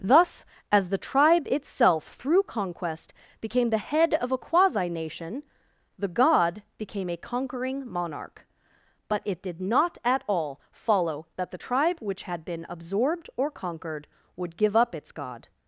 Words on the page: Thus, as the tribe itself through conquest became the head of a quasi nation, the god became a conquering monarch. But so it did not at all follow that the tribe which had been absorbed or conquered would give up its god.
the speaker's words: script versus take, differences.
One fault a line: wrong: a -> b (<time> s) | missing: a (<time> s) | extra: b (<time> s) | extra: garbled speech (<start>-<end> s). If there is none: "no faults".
missing: so (9.2 s)